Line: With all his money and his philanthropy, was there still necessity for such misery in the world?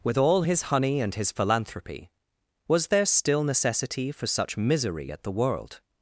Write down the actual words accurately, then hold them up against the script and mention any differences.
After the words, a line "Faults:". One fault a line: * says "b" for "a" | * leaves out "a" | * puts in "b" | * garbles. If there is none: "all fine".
With all his honey and his philanthropy, was there still necessity for such misery at the world?
Faults:
* says "honey" for "money"
* says "at" for "in"